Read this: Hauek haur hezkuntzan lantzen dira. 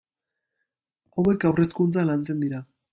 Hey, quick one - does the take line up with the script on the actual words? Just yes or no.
yes